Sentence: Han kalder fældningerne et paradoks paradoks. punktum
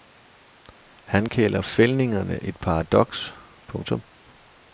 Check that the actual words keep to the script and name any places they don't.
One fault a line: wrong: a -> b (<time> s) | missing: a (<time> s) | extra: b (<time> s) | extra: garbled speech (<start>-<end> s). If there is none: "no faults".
missing: paradoks (3.3 s)